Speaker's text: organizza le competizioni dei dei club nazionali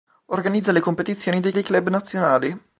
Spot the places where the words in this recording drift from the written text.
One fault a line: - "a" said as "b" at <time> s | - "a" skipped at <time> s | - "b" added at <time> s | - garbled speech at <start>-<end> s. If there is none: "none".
none